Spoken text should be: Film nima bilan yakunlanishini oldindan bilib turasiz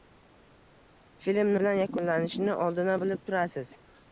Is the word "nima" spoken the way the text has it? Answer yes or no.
no